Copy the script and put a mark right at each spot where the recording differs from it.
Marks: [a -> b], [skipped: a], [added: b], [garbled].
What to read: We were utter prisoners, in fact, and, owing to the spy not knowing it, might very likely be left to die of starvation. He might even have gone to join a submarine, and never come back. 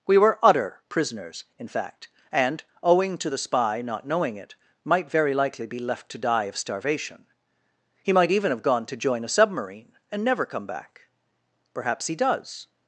We were utter prisoners, in fact, and, owing to the spy not knowing it, might very likely be left to die of starvation. He might even have gone to join a submarine, and never come back. [added: Perhaps he does]